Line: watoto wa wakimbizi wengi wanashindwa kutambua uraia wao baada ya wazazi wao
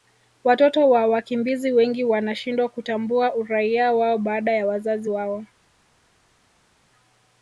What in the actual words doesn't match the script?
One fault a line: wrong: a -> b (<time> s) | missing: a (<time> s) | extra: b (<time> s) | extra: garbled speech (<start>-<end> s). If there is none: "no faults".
no faults